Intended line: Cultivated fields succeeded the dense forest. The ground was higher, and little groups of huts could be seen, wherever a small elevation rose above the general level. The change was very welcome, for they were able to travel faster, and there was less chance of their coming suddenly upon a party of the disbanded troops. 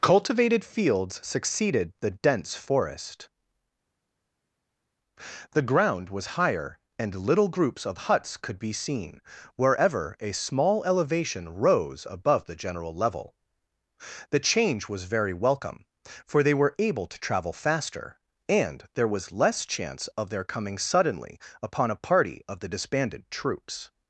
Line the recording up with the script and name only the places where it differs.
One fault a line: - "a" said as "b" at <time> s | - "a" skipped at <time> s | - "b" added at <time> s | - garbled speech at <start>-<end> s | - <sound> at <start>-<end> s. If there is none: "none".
none